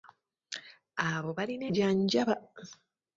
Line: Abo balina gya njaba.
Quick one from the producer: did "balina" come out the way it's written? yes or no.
yes